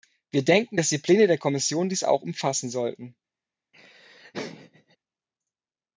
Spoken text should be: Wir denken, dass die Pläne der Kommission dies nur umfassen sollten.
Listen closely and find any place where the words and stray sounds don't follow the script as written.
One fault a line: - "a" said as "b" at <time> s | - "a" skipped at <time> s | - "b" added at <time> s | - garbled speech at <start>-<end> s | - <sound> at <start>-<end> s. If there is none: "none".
- "nur" said as "auch" at 2.0 s
- laugh at 3.7-5.0 s